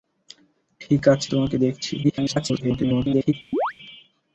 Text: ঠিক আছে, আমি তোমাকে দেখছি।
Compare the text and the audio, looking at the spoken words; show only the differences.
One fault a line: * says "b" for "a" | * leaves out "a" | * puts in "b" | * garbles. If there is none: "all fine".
* leaves out "আমি"
* garbles